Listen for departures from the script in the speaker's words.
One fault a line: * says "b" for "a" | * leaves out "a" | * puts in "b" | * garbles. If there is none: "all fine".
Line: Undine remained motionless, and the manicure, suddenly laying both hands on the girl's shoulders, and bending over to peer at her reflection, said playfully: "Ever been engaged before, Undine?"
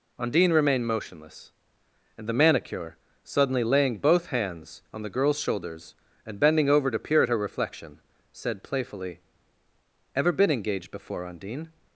all fine